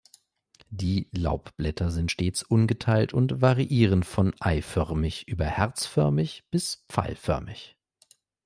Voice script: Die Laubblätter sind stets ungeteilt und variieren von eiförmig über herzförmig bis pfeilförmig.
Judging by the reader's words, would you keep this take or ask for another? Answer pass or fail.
pass